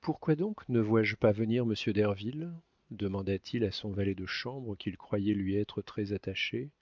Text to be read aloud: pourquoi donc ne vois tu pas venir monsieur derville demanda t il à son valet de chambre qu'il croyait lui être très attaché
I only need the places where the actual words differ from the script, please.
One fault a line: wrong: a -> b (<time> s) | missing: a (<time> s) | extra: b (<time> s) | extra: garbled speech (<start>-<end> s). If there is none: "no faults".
wrong: tu -> je (1.0 s)